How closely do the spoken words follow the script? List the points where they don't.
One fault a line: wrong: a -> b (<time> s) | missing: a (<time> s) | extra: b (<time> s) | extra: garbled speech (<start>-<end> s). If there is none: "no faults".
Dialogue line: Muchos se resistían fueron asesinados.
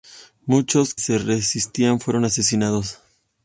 no faults